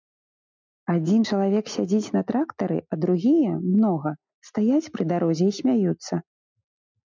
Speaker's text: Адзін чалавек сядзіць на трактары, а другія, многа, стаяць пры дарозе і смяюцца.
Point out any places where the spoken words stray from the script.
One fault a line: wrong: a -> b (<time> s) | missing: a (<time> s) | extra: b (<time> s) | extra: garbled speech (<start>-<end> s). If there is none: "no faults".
no faults